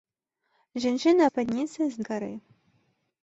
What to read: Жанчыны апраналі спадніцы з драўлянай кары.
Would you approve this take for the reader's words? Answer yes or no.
no